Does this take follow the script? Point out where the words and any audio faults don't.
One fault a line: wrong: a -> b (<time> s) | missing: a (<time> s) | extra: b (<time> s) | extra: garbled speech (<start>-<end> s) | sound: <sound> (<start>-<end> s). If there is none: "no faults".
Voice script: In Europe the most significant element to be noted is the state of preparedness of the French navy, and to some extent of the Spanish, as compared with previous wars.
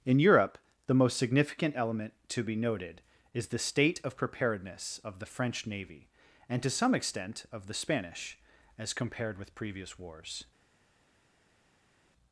no faults